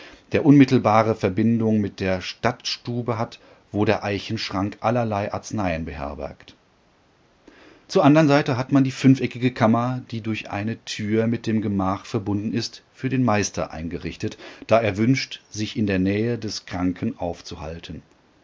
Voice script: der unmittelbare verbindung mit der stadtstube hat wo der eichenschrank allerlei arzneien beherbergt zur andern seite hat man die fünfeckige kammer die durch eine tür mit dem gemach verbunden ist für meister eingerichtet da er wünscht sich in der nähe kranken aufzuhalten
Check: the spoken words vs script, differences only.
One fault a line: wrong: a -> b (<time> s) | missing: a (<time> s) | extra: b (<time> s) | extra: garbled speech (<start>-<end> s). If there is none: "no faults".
extra: den (13.1 s)
extra: des (16.4 s)